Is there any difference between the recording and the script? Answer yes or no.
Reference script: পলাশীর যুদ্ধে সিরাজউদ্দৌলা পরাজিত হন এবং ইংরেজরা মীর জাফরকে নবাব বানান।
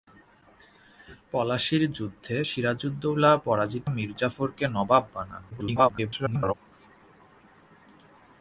yes